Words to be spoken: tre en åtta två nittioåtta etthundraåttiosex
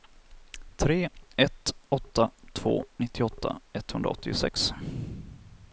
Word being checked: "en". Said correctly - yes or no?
no